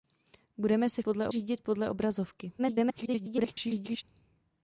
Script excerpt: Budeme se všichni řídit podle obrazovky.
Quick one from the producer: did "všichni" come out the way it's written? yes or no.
no